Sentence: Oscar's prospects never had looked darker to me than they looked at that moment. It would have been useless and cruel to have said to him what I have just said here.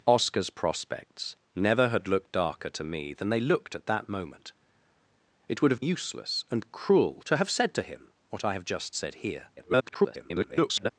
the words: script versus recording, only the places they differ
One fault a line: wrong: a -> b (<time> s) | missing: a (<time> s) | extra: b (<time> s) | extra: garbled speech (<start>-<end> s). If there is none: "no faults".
missing: been (5.8 s)
extra: garbled speech (9.6-10.9 s)